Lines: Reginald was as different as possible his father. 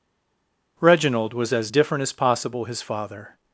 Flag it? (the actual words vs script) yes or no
no